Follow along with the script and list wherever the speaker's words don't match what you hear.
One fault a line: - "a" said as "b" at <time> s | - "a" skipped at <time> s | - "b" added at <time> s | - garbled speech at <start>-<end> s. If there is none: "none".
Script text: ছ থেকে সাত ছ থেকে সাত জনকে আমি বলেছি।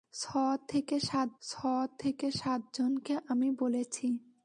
none